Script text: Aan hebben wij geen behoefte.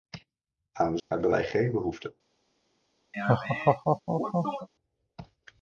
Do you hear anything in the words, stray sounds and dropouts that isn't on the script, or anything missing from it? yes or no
yes